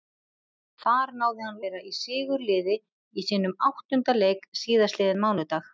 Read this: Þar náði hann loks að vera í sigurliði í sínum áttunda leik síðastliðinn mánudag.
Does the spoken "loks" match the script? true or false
false